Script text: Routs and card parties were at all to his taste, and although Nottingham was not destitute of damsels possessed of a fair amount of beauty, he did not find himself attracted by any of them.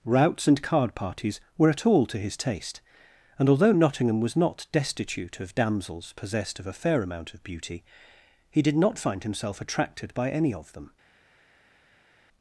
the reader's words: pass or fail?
pass